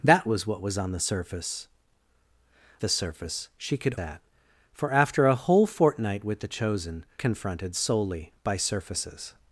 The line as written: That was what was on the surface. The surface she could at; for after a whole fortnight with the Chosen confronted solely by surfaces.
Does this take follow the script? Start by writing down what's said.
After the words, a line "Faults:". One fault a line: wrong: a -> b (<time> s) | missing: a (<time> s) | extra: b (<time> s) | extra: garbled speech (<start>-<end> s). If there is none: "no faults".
That was what was on the surface. The surface she could at; for after a whole fortnight with the Chosen confronted solely by surfaces.
Faults:
no faults